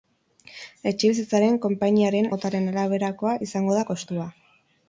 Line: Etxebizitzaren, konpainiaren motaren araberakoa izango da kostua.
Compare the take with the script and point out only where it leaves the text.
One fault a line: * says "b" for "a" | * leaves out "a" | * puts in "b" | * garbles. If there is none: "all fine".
all fine